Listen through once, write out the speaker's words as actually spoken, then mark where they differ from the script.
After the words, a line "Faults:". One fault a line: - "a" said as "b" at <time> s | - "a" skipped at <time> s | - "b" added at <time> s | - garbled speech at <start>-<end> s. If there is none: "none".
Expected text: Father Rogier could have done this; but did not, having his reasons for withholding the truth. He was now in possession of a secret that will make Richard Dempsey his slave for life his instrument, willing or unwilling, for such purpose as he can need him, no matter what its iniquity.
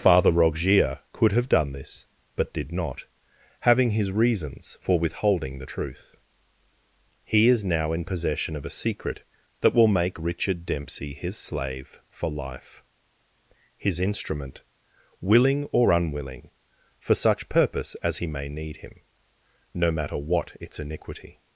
Father Rogier could have done this; but did not, having his reasons for withholding the truth. He is now in possession of a secret that will make Richard Dempsey his slave for life his instrument, willing or unwilling, for such purpose as he may need him, no matter what its iniquity.
Faults:
- "was" said as "is" at 7.5 s
- "can" said as "may" at 18.3 s